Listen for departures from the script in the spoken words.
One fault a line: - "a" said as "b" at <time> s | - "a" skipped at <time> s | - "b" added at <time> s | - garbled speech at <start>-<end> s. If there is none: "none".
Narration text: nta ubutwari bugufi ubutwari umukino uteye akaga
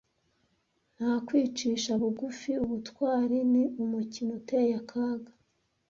- "ubutwari" said as "kwicisha" at 1.2 s
- "ni" added at 3.5 s